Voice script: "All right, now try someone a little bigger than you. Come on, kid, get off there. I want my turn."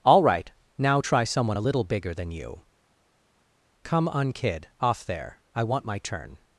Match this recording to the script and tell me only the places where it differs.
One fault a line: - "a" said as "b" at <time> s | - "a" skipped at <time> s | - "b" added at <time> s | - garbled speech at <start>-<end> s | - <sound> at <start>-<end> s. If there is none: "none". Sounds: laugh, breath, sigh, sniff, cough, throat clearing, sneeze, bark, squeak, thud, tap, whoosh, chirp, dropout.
- "get" skipped at 4.7 s